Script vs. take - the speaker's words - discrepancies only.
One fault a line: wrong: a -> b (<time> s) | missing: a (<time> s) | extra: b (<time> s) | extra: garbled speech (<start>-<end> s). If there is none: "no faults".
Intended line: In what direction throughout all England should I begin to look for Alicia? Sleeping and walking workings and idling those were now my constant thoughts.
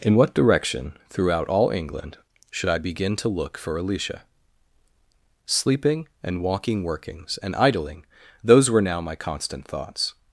no faults